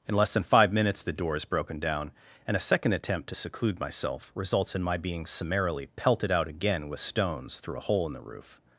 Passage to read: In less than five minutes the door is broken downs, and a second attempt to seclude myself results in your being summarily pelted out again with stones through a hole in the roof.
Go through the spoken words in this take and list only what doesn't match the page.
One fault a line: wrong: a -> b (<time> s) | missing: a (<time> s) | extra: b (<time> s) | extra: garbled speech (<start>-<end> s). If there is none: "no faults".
wrong: downs -> down (1.8 s)
wrong: your -> my (4.8 s)